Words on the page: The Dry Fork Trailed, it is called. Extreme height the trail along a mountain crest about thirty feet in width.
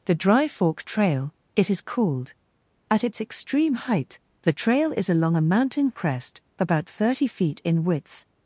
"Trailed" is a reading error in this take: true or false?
true